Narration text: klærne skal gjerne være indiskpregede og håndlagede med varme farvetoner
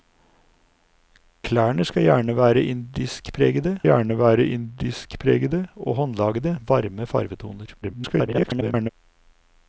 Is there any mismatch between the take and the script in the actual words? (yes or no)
yes